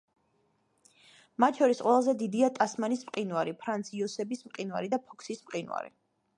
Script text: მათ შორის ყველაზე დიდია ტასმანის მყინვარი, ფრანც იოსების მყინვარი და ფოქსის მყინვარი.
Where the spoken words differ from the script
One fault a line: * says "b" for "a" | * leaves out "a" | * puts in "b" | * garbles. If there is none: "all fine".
all fine